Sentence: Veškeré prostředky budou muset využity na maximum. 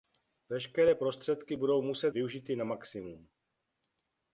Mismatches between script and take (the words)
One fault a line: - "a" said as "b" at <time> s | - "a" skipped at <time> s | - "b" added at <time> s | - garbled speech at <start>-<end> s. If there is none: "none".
none